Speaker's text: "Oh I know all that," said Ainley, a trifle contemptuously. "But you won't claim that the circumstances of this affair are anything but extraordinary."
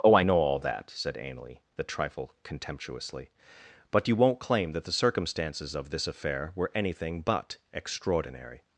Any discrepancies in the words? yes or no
yes